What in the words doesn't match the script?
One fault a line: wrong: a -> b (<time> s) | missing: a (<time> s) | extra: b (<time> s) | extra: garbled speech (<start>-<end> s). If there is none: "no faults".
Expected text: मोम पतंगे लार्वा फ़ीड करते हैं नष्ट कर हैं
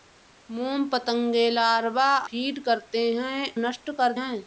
no faults